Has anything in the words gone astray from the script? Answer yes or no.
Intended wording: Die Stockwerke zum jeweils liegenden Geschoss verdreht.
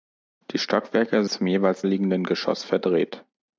no